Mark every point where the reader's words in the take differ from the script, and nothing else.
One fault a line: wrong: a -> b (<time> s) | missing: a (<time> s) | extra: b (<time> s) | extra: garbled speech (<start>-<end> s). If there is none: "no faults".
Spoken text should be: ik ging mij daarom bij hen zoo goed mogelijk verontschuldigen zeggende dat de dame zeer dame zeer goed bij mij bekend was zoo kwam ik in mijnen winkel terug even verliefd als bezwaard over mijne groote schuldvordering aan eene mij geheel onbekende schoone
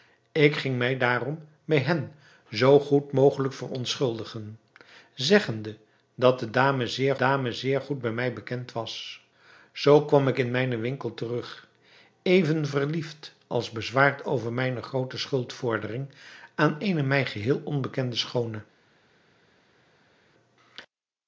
no faults